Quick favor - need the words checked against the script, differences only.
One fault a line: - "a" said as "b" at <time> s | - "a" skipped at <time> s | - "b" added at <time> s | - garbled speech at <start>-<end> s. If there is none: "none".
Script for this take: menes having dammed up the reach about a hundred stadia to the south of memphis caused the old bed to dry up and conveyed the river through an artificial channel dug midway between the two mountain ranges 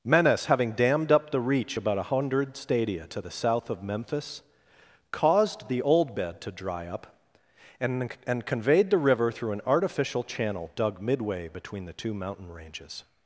- "and" added at 8.3 s